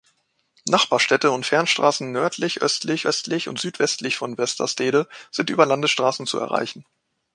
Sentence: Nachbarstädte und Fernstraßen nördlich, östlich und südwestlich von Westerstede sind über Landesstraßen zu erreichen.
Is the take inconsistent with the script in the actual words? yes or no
yes